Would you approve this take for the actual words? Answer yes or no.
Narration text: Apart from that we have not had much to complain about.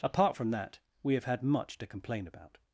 no